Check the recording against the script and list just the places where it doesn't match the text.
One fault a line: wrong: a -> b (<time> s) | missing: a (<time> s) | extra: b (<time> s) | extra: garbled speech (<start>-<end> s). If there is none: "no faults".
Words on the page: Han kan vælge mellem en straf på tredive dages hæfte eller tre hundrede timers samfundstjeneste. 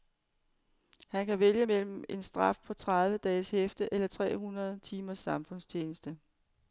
no faults